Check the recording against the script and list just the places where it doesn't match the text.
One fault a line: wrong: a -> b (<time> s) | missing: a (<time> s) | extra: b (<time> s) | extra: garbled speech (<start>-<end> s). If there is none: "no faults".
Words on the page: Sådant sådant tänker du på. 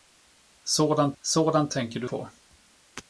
no faults